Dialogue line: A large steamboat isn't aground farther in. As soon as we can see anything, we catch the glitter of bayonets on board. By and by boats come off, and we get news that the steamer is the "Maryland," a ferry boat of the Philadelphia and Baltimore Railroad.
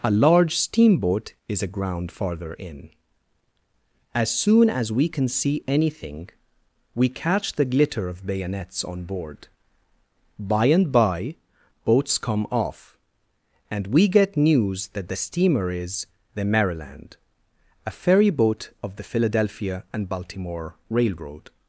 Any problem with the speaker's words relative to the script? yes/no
yes